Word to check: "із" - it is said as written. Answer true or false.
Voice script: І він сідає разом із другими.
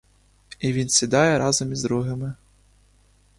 true